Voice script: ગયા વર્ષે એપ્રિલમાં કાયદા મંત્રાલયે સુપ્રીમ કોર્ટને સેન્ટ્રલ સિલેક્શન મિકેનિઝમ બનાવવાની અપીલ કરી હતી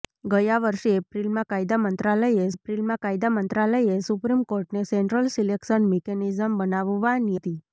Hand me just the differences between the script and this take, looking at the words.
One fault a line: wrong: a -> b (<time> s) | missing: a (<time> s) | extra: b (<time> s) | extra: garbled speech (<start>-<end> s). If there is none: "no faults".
extra: એપ્રિલમાં કાયદા મંત્રાલયે (2.5 s)
missing: અપીલ કરી (7.4 s)